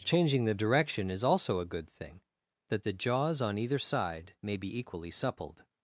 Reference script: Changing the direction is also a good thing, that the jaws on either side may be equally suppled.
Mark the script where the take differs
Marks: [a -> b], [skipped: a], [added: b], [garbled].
Changing the direction is also a good thing, that the jaws on either side may be equally suppled.